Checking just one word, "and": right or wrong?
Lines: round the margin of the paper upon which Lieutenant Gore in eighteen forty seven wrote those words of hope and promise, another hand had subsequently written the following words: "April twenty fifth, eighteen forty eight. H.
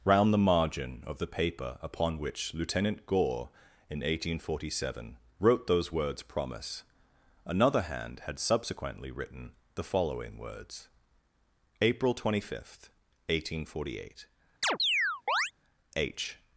wrong